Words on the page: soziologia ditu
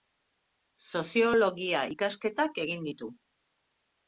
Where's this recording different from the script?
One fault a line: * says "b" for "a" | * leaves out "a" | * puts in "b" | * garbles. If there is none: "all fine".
* puts in "ikasketak egin"